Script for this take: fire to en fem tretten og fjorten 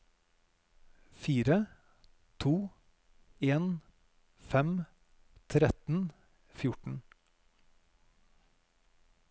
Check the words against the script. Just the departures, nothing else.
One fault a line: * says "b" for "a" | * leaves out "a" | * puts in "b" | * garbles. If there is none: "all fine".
all fine